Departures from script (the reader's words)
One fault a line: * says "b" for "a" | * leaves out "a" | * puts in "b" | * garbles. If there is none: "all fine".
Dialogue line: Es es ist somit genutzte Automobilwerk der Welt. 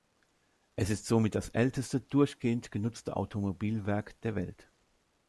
* leaves out "es"
* puts in "das älteste durchgehend"